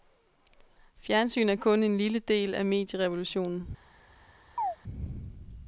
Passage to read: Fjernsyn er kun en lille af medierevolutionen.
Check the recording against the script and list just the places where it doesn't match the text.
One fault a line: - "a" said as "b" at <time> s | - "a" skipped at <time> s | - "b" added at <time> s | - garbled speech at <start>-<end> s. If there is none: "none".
- "del" added at 2.2 s